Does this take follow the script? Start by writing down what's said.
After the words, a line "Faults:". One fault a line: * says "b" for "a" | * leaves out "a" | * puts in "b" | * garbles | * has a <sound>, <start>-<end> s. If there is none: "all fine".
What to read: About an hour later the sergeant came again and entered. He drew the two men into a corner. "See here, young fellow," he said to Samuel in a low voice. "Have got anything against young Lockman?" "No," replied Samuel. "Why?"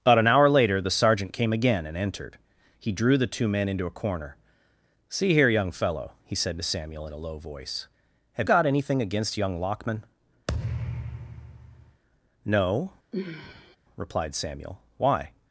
About an hour later the sergeant came again and entered. He drew the two men into a corner. "See here, young fellow," he said to Samuel in a low voice. "Have got anything against young Lockman?" "No," replied Samuel. "Why?"
Faults:
* has a thud, 10.5-12.0 s
* has a sigh, 13.1-13.8 s